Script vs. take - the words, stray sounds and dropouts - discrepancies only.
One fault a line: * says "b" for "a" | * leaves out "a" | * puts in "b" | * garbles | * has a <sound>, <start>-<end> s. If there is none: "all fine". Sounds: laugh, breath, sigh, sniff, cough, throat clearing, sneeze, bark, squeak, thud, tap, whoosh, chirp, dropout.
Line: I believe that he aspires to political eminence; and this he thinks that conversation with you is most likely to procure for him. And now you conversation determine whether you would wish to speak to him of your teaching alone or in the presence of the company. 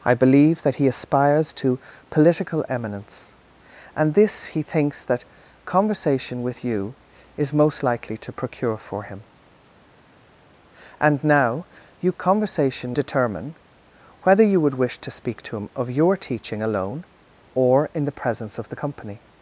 all fine